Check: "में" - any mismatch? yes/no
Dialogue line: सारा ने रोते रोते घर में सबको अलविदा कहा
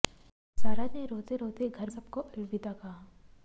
yes